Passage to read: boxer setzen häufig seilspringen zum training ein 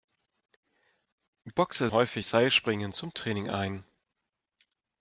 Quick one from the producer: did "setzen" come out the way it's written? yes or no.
no